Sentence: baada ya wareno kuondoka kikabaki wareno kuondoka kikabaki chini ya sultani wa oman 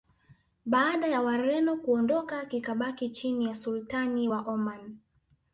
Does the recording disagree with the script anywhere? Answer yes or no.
yes